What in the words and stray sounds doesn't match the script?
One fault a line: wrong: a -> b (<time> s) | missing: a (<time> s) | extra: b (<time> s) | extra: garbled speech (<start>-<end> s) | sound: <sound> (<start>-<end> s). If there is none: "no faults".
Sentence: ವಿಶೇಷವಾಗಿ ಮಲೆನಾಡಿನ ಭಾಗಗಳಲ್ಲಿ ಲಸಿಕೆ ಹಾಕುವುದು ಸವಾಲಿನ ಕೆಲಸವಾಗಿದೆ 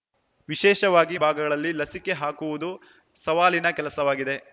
missing: ಮಲೆನಾಡಿನ (1.2 s)